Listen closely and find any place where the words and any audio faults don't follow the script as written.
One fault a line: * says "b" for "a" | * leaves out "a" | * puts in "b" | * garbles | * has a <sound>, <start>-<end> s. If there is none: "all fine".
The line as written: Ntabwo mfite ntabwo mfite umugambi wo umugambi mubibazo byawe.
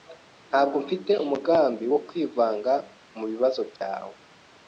* leaves out "ntabwo mfite"
* says "kwivanga" for "umugambi"
* has a dropout, 3.8-3.8 s